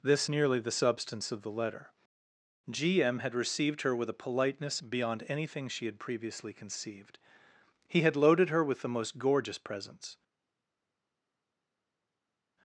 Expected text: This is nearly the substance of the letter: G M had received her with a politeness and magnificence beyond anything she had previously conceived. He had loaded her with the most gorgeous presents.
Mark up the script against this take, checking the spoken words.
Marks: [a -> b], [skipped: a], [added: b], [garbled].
This [skipped: is] nearly the substance of the letter: G M had received her with a politeness [skipped: and magnificence] beyond anything she had previously conceived. He had loaded her with the most gorgeous presents.